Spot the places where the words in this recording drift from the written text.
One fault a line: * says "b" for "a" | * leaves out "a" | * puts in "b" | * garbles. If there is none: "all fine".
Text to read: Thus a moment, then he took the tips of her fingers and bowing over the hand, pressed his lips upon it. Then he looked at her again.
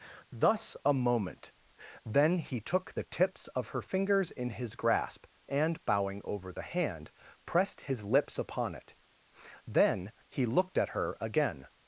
* puts in "in his grasp"